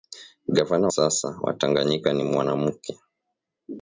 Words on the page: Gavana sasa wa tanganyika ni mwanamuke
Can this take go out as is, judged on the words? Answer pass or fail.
pass